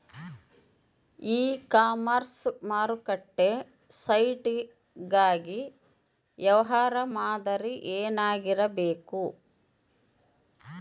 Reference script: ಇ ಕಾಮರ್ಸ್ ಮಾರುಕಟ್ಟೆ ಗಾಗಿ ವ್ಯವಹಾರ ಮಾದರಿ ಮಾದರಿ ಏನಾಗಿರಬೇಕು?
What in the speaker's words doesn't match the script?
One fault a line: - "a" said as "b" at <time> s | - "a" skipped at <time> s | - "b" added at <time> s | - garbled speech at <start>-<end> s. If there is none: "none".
- "ಸೈಟ್" added at 4.0 s
- "ಮಾದರಿ" skipped at 7.7 s